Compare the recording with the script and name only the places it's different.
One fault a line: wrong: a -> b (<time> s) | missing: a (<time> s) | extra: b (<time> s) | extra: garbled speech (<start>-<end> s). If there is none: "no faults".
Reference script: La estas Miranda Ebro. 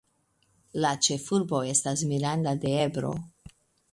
extra: ĉefurbo (1.1 s)
extra: de (2.6 s)